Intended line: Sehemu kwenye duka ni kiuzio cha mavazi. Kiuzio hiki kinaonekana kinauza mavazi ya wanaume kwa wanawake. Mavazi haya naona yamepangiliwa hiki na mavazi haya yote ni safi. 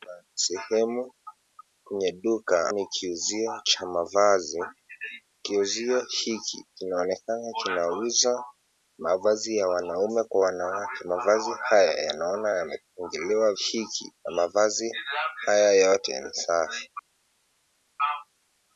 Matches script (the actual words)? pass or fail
pass